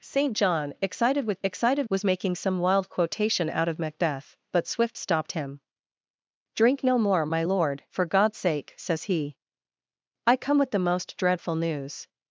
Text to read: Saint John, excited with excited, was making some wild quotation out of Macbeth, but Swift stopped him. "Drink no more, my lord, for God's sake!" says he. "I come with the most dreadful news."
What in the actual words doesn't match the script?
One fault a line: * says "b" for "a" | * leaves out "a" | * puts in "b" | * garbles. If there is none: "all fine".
all fine